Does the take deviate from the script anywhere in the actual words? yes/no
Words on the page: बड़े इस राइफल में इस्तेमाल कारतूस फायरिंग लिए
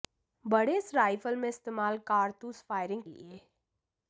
no